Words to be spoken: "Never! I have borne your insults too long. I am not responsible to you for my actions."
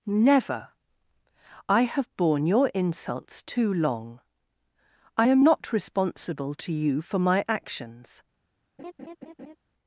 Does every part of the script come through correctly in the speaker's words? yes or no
yes